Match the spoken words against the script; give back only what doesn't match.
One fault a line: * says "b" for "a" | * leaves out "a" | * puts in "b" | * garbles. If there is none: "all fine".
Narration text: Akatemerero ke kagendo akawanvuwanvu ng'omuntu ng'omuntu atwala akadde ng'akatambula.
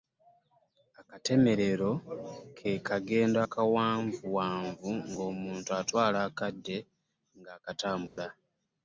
* leaves out "ng'omuntu"